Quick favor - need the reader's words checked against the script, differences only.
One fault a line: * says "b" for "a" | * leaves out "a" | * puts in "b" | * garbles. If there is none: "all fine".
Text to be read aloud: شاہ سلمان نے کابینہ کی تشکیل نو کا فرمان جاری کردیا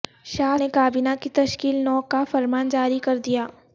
* leaves out "سلمان"